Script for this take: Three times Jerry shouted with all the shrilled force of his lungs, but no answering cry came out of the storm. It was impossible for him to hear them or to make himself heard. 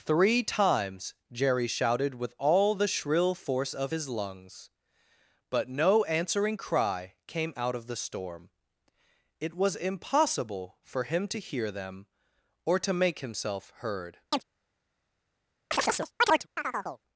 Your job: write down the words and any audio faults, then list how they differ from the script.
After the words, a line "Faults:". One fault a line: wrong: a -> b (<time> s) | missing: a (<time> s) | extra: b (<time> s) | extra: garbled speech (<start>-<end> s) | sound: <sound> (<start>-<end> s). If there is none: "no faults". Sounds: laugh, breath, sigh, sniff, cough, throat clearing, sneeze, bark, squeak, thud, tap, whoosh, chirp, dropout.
Three times Jerry shouted with all the shrill force of his lungs, but no answering cry came out of the storm. It was impossible for him to hear them or to make himself heard.
Faults:
wrong: shrilled -> shrill (2.9 s)
sound: chirp (14.3-14.4 s)
sound: chirp (15.7-17.0 s)